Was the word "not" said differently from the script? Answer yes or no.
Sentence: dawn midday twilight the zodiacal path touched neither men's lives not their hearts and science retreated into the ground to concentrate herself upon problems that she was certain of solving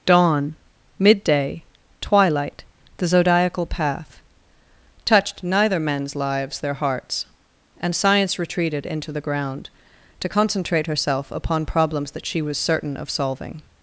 yes